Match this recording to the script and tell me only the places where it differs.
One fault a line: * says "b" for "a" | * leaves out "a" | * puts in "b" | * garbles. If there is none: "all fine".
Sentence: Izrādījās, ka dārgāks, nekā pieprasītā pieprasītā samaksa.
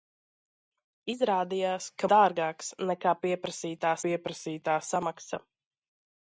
all fine